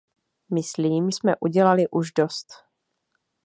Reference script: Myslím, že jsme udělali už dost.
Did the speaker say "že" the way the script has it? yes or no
no